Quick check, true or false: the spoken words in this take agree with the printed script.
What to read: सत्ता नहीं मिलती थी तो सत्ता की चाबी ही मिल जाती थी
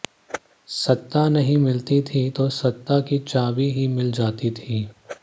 true